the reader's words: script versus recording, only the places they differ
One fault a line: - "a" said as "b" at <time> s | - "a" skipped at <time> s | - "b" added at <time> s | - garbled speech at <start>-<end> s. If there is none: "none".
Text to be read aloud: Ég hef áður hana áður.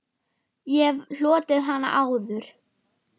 - "áður" said as "hlotið" at 1.2 s